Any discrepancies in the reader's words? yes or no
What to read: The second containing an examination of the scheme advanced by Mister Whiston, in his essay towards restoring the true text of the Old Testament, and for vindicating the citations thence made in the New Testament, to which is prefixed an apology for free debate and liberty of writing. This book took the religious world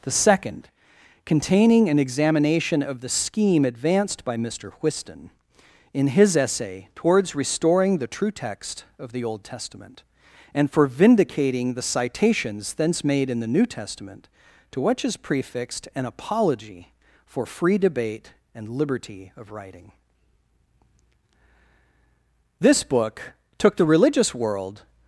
no